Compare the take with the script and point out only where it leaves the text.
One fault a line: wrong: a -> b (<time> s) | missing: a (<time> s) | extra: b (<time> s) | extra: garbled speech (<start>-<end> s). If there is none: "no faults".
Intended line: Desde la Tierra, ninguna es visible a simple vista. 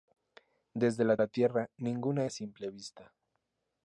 extra: la (1.2 s)
missing: es visible (2.3 s)